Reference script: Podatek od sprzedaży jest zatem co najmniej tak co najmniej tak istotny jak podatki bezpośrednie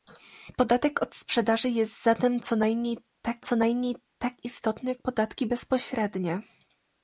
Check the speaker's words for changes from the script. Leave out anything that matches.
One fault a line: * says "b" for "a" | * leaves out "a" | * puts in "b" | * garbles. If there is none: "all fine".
all fine